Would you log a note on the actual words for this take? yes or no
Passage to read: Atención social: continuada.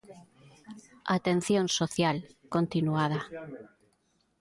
no